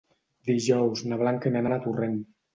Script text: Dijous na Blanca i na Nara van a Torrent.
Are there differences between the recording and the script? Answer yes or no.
yes